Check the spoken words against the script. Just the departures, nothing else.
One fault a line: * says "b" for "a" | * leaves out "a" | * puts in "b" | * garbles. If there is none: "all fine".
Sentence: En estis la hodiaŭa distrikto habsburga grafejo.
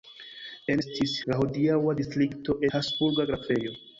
all fine